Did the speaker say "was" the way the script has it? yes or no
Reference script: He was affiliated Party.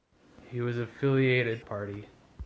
yes